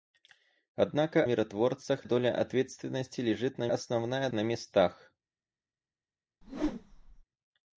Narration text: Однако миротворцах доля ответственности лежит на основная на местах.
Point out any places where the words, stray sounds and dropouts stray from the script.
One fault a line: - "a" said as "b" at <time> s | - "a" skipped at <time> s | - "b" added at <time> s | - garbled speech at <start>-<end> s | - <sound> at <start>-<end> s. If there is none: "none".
- whoosh at 6.4-7.2 s